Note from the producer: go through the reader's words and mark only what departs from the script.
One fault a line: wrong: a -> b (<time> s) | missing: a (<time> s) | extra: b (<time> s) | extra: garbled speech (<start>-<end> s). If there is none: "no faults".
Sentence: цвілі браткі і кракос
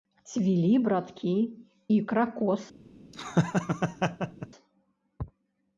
no faults